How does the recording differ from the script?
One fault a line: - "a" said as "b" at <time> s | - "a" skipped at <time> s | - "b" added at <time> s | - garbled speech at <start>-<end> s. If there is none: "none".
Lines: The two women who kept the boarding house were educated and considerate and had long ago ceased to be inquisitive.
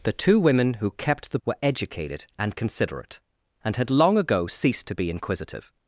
- "boarding house" skipped at 1.4 s